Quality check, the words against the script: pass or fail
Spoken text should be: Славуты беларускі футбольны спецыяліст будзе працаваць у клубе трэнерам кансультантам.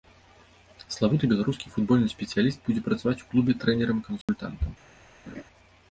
pass